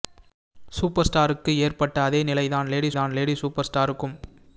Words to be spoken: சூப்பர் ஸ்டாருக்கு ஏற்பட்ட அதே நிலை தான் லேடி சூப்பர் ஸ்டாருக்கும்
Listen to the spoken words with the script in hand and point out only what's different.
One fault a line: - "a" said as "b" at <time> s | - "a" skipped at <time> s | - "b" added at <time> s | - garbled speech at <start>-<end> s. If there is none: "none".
- "தான் லேடி" added at 2.9 s